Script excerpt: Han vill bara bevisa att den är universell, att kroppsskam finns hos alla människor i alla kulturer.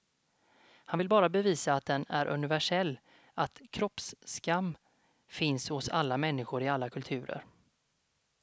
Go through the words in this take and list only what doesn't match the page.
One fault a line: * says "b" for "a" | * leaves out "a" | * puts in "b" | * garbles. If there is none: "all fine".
all fine